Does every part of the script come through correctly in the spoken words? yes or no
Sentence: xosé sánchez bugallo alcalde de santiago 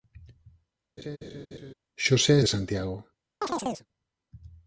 no